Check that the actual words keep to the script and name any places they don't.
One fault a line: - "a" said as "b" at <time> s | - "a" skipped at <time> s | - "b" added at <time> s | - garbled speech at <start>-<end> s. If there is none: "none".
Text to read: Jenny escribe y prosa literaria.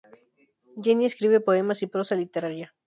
- "poemas" added at 1.4 s